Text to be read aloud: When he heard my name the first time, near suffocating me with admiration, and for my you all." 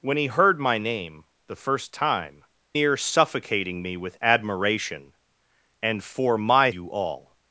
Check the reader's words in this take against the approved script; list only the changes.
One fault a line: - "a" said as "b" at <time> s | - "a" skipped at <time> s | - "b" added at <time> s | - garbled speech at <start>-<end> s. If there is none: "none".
none